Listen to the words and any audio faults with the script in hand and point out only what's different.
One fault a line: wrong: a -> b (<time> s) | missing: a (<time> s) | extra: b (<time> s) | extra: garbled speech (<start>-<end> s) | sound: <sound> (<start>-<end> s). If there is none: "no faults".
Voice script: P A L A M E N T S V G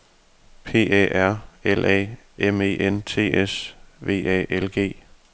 extra: R (1.1 s)
extra: A L (4.3 s)